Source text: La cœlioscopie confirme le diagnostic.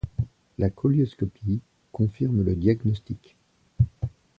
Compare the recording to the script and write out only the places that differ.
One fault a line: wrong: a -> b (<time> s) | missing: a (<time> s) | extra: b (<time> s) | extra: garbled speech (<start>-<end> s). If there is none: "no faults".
no faults